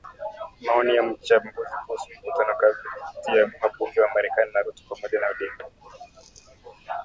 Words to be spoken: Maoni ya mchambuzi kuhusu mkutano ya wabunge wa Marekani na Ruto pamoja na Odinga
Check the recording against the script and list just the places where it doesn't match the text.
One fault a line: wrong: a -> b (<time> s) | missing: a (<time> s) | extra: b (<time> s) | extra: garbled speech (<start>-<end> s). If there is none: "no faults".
extra: kati (2.6 s)